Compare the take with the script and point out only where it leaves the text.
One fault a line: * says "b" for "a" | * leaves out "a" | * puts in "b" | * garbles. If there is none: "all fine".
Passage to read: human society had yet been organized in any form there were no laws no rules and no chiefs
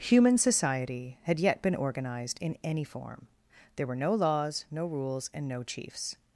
all fine